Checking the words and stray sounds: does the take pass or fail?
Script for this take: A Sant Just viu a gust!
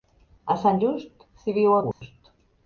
fail